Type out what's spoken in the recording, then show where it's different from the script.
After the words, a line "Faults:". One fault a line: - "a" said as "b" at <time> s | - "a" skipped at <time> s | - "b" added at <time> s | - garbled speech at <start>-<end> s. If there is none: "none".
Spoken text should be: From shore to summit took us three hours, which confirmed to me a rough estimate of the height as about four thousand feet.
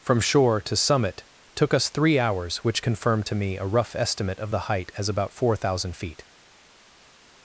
From shore to summit took us three hours, which confirmed to me a rough estimate of the height as about four thousand feet.
Faults:
none